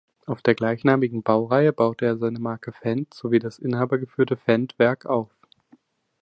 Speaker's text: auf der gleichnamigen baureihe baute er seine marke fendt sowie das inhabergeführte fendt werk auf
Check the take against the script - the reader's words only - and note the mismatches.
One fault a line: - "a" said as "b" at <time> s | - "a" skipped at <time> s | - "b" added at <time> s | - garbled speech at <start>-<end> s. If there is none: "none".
none